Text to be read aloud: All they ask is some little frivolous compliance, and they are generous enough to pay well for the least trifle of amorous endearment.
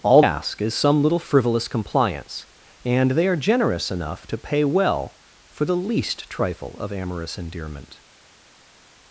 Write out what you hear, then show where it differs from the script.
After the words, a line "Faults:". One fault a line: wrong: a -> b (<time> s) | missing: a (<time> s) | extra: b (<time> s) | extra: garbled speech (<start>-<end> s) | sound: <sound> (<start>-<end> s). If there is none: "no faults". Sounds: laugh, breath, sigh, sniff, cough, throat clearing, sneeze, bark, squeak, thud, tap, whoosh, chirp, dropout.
All ask is some little frivolous compliance, and they are generous enough to pay well for the least trifle of amorous endearment.
Faults:
missing: they (0.2 s)